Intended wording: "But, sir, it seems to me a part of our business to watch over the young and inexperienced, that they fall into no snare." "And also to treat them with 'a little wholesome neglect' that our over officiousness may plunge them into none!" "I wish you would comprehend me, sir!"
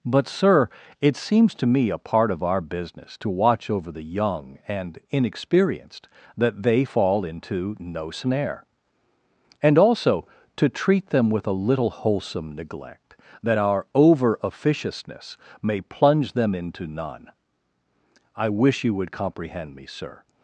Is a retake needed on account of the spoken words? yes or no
no